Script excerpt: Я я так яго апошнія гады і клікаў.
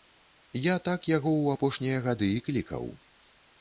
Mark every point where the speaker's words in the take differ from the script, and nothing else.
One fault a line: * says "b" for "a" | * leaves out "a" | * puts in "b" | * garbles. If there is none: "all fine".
* leaves out "я"
* puts in "ў"